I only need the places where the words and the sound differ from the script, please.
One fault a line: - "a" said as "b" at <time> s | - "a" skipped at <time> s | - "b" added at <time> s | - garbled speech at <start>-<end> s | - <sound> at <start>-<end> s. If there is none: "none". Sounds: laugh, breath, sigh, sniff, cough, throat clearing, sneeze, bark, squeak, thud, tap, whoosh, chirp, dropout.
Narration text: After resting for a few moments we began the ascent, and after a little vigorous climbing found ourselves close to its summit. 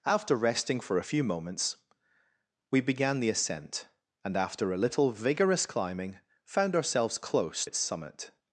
- "to" skipped at 7.6 s